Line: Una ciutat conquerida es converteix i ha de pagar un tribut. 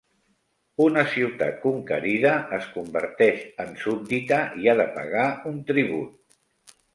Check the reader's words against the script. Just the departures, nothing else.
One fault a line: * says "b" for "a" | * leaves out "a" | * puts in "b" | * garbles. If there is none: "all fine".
* puts in "en súbdita"